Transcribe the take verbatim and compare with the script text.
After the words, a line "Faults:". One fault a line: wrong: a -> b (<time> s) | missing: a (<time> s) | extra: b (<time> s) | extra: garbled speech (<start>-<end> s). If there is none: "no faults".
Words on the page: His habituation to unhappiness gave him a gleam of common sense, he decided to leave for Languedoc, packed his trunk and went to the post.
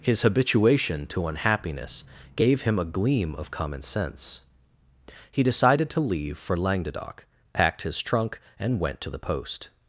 His habituation to unhappiness gave him a gleam of common sense, he decided to leave for Languedoc, packed his trunk and went to the post.
Faults:
no faults